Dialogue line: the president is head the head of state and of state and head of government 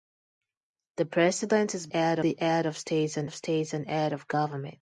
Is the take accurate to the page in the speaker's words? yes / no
yes